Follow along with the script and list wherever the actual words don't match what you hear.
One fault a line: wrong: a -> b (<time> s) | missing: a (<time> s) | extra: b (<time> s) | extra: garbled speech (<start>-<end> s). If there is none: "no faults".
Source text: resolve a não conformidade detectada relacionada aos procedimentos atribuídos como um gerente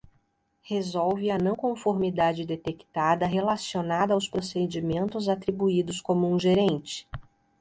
no faults